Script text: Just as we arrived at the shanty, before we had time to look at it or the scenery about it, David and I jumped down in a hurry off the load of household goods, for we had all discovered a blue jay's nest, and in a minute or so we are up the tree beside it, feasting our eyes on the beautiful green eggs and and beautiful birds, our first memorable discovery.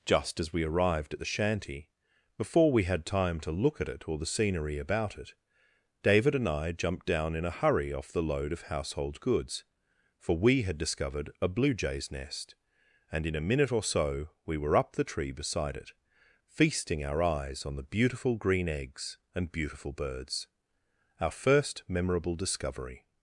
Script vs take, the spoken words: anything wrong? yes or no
yes